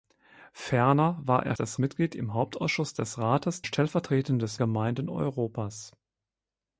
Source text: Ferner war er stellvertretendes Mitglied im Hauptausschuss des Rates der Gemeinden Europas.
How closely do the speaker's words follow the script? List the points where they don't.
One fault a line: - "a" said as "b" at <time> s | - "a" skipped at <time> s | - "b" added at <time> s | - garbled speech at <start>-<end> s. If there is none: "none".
- "stellvertretendes" said as "des" at 1.5 s
- "der" said as "stellvertretendes" at 3.6 s